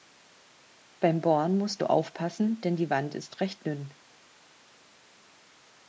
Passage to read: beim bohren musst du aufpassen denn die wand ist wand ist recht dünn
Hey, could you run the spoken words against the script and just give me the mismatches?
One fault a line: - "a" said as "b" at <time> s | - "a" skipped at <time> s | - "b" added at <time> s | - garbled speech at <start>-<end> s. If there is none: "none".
- "wand ist" skipped at 3.4 s